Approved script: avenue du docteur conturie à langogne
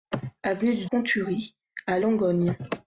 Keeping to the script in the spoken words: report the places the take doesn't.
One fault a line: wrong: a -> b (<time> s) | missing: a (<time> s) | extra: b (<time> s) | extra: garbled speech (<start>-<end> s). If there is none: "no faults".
missing: docteur (0.9 s)